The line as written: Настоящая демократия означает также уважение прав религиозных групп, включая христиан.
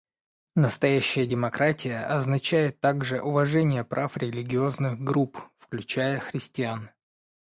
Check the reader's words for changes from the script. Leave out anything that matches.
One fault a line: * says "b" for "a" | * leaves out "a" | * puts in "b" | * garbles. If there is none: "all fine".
all fine